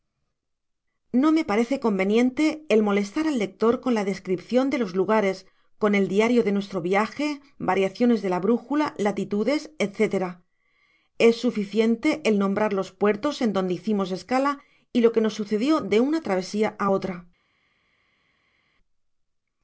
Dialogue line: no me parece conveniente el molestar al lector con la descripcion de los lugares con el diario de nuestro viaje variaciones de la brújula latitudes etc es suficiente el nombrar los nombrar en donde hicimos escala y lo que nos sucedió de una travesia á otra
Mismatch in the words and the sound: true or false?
true